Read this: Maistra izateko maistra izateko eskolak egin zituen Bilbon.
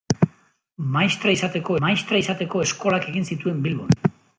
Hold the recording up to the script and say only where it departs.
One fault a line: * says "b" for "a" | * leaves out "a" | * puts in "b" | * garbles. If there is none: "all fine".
all fine